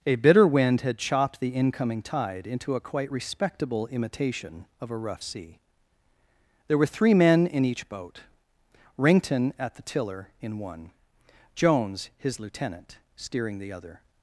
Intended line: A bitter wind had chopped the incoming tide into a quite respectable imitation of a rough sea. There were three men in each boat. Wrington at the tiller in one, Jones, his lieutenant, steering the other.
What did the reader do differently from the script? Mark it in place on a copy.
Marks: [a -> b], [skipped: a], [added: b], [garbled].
A bitter wind had chopped the incoming tide into a quite respectable imitation of a rough sea. There were three men in each boat. Wrington at the tiller in one, Jones, his lieutenant, steering the other.